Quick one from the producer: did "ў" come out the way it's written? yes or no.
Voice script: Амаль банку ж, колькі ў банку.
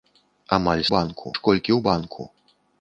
yes